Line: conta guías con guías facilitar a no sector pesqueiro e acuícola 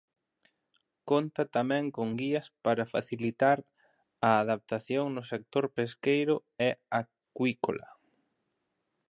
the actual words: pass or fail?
fail